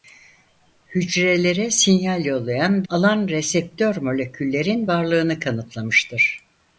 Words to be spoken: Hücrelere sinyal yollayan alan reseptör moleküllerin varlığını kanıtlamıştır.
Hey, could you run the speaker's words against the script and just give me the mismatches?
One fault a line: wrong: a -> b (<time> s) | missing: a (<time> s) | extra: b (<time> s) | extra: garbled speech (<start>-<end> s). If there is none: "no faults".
no faults